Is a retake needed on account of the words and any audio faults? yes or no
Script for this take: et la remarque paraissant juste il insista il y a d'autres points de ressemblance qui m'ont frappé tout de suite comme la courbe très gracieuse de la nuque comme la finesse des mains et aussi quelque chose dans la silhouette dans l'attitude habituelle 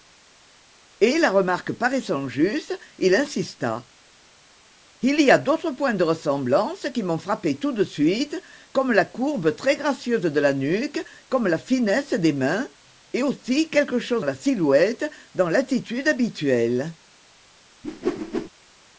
yes